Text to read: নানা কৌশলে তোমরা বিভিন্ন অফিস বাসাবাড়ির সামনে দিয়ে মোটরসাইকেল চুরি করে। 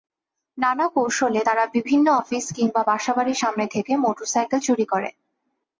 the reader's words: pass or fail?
fail